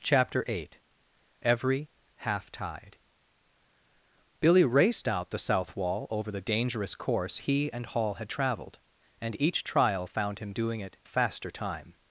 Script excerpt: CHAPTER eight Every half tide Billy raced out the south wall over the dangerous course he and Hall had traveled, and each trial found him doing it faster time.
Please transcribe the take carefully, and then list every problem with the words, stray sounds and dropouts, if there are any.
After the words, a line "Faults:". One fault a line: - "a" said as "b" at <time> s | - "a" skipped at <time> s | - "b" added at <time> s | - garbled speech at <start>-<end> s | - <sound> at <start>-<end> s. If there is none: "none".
CHAPTER eight Every half tide Billy raced out the south wall over the dangerous course he and Hall had traveled, and each trial found him doing it faster time.
Faults:
none